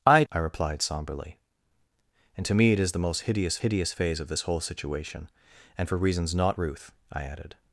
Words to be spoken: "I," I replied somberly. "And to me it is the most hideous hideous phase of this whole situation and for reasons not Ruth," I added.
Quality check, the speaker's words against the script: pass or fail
pass